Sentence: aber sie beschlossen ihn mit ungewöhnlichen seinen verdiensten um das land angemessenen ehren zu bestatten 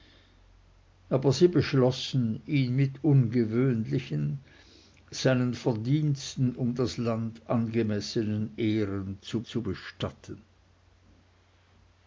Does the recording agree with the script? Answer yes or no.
no